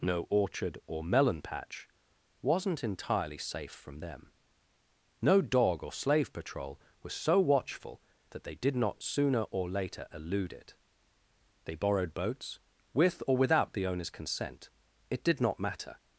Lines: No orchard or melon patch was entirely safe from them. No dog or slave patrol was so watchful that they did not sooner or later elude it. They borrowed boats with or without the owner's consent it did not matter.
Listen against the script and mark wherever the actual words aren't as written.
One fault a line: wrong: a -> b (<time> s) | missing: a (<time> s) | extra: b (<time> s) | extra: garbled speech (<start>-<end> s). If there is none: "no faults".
wrong: was -> wasn't (2.4 s)